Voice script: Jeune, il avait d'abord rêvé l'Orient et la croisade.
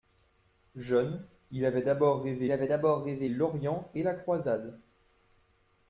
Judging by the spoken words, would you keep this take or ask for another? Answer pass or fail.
fail